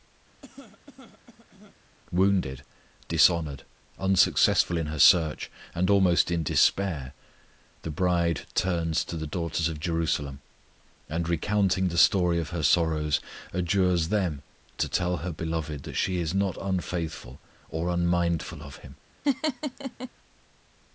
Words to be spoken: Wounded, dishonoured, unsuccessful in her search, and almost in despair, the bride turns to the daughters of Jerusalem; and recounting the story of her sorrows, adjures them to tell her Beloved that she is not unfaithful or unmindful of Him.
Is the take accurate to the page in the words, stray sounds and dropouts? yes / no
no